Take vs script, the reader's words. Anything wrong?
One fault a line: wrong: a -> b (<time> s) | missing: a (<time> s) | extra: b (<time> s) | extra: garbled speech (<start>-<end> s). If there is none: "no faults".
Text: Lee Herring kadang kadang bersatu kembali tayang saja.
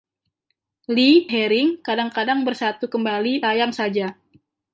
no faults